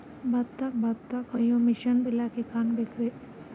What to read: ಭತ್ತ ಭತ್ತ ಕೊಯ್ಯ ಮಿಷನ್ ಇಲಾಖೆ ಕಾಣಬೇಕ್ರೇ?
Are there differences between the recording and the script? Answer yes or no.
no